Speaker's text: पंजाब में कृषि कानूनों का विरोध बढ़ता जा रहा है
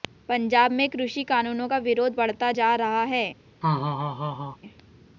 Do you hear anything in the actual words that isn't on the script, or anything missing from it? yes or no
no